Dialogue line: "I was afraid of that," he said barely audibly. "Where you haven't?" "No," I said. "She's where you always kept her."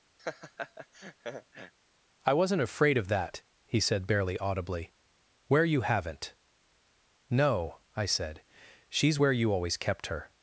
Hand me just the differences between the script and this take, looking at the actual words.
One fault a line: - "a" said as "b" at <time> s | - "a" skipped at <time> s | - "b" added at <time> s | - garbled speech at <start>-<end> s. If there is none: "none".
- "was" said as "wasn't" at 2.3 s